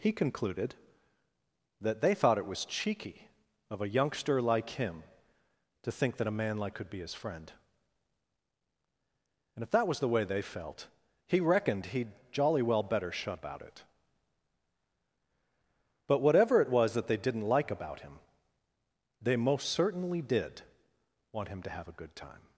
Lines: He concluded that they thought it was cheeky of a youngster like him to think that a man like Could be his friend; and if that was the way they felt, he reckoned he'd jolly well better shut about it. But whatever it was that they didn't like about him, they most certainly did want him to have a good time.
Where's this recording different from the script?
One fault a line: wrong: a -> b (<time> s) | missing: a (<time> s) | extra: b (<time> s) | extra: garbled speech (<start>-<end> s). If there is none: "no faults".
no faults